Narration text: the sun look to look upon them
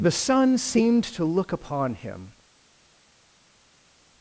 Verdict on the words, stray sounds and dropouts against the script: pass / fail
fail